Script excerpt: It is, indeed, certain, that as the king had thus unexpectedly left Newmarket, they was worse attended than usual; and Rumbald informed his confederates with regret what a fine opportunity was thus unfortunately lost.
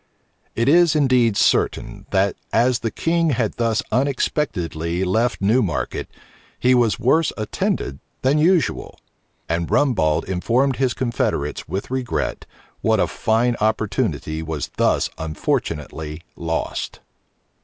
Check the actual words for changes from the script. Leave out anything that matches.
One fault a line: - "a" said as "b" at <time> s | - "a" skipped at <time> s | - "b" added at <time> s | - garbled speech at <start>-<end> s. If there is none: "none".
- "they" said as "he" at 6.6 s